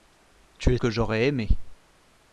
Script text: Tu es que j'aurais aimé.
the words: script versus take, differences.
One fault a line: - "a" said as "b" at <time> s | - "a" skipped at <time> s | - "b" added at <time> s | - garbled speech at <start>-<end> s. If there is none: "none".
none